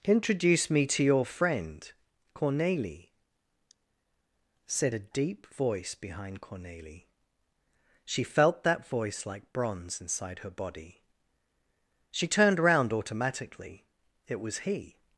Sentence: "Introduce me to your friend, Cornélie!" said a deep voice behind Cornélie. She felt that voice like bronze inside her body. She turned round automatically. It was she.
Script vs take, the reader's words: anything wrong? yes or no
yes